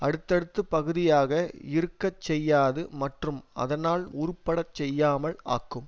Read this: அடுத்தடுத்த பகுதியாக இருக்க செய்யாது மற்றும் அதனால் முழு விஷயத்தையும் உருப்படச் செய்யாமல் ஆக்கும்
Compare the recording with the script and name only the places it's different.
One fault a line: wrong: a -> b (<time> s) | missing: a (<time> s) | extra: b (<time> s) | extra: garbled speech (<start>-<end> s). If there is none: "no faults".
missing: முழு விஷயத்தையும் (4.0 s)